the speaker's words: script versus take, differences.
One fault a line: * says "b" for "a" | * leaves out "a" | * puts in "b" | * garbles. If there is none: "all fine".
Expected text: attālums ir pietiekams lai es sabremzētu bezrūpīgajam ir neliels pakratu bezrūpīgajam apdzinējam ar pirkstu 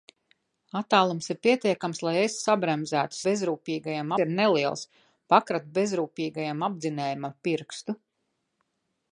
all fine